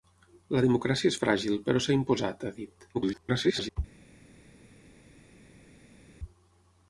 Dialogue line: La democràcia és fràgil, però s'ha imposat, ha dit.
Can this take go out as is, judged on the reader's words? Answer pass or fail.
fail